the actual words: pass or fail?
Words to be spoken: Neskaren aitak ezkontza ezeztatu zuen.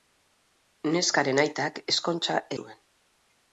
fail